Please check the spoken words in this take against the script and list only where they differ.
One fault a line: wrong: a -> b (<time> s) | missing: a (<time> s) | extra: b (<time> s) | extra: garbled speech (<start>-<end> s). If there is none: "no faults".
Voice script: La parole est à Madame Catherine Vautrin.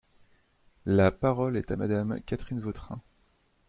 no faults